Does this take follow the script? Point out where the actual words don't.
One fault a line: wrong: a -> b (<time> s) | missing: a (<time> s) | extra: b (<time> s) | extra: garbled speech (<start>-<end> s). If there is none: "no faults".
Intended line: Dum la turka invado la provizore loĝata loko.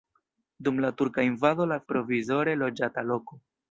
no faults